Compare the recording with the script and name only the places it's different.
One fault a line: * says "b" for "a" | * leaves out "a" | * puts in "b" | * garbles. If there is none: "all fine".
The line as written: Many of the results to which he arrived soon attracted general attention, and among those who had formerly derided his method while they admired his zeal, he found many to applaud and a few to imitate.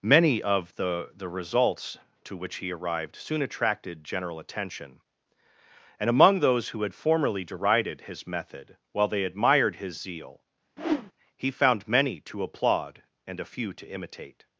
* puts in "the"